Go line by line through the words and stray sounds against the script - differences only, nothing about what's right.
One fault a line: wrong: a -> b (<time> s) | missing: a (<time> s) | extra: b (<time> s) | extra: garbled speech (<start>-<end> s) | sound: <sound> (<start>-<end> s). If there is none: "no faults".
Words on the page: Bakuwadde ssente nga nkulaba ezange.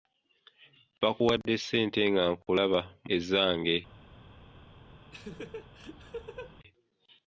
sound: laugh (5.1-6.5 s)